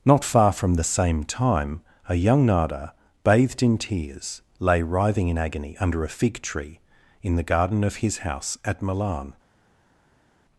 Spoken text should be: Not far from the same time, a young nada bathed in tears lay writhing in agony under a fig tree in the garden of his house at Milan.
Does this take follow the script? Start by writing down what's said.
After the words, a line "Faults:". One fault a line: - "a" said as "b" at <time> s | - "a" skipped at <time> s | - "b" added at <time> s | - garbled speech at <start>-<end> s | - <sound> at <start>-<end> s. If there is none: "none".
Not far from the same time, a young nada bathed in tears lay writhing in agony under a fig tree in the garden of his house at Milan.
Faults:
none